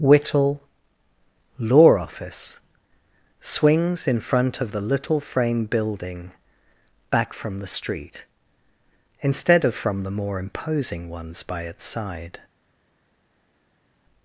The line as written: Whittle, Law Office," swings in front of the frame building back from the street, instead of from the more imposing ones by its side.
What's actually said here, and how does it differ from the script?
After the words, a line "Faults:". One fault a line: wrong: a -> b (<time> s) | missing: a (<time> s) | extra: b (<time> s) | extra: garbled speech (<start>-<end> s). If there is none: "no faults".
Whittle, Law Office," swings in front of the little frame building back from the street, instead of from the more imposing ones by its side.
Faults:
extra: little (4.8 s)